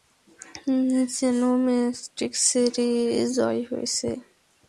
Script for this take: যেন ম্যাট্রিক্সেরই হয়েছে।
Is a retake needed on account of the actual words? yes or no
yes